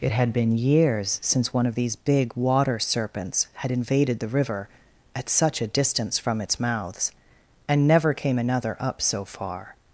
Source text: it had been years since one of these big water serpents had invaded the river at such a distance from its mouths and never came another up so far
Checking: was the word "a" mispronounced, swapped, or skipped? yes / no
no